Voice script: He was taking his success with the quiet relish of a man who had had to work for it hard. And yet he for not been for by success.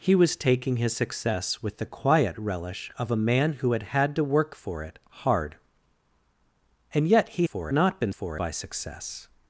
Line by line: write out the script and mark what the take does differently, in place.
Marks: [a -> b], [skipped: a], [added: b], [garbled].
He was taking his success with the quiet relish of a man who had had to work for it hard. And yet he for not been for by success.